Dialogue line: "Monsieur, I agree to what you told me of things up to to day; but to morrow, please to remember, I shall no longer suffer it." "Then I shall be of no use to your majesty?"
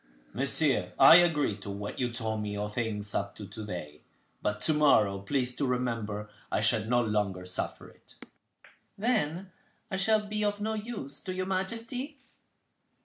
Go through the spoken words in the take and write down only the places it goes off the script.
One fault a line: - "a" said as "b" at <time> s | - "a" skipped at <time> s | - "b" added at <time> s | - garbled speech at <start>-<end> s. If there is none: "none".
none